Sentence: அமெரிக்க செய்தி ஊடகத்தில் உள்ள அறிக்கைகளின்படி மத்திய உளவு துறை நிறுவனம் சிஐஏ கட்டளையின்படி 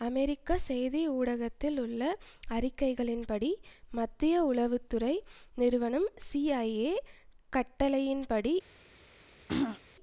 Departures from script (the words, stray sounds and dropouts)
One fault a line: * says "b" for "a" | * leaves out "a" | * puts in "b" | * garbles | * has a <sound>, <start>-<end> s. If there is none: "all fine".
* has a throat clearing, 9.5-9.8 s